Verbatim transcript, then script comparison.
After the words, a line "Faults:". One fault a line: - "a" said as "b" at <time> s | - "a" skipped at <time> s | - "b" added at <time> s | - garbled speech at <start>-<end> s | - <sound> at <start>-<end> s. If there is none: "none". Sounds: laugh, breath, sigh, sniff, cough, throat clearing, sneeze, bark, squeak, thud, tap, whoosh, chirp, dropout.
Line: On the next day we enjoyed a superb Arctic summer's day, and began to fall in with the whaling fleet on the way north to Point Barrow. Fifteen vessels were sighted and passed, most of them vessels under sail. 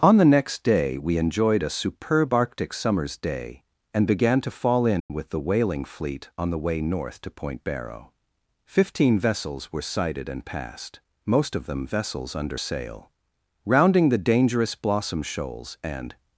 On the next day we enjoyed a superb Arctic summer's day, and began to fall in with the whaling fleet on the way north to Point Barrow. Fifteen vessels were sighted and passed, most of them vessels under sail. Rounding the dangerous Blossom shoals and
Faults:
- dropout at 5.0-5.1 s
- "Rounding the dangerous Blossom shoals and" added at 13.6 s